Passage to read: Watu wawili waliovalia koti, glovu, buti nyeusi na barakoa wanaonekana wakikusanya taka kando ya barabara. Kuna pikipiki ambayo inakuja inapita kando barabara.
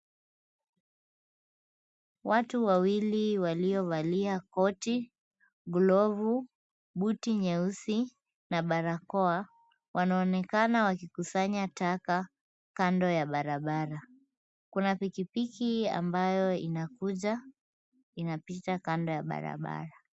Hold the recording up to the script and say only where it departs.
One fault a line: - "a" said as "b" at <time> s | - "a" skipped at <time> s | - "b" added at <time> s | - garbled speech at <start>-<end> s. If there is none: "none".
- "ya" added at 19.1 s